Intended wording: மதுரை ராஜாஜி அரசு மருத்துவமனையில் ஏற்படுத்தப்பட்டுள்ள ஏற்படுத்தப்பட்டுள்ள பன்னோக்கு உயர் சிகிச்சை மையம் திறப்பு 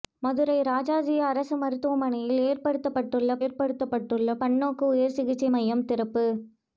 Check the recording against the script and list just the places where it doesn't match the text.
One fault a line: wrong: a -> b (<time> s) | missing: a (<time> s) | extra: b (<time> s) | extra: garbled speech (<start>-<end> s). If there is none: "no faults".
no faults